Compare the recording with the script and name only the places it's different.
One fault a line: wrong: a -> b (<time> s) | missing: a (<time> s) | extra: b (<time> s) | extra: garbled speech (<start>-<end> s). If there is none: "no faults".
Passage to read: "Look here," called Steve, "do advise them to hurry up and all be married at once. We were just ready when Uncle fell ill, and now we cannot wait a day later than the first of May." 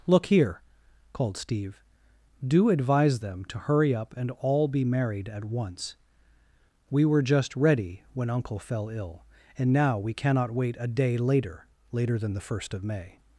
extra: later (11.9 s)